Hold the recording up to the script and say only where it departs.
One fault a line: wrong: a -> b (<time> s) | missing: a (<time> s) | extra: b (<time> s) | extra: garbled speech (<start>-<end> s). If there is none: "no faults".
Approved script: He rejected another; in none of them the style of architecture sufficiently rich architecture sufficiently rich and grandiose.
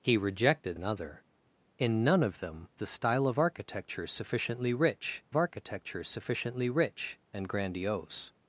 no faults